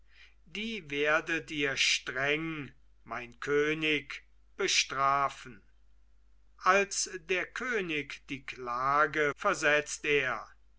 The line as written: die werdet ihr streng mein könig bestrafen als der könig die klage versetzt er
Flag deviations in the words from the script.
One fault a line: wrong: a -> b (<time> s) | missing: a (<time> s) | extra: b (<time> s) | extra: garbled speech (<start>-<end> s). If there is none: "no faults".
no faults